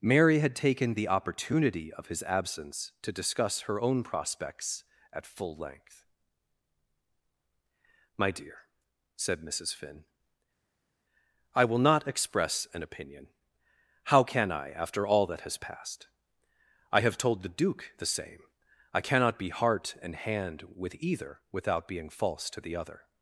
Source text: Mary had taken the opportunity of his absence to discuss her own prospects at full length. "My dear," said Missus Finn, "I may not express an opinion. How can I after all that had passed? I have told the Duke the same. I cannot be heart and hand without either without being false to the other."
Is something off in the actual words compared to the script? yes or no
yes